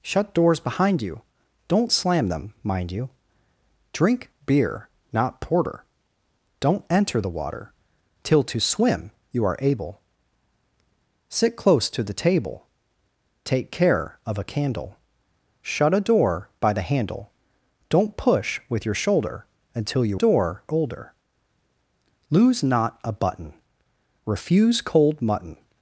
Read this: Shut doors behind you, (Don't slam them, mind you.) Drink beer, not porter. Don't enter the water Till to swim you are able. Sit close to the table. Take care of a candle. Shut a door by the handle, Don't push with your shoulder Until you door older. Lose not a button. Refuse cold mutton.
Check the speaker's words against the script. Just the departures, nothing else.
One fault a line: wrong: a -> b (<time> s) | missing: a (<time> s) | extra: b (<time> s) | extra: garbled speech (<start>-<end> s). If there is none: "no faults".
no faults